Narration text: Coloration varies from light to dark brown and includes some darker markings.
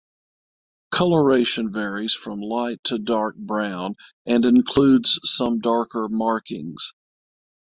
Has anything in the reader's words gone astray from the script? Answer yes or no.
no